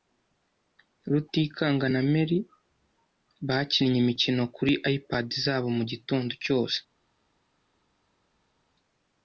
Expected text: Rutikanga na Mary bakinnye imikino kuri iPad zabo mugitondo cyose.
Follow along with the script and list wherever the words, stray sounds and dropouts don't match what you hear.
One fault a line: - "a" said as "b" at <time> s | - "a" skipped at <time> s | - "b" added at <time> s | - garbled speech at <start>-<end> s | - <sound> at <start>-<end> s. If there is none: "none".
none